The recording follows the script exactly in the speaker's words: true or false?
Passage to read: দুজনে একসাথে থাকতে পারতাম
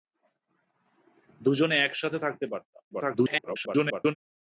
false